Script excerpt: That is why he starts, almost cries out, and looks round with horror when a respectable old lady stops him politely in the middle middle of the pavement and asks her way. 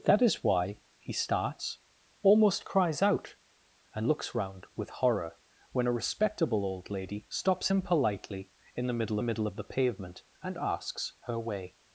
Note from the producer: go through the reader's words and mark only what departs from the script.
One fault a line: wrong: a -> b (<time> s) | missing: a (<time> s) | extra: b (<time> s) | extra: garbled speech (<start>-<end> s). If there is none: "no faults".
no faults